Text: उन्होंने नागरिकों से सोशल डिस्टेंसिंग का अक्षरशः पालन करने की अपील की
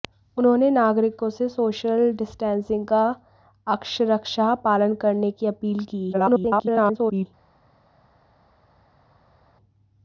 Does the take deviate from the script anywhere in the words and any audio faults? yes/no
yes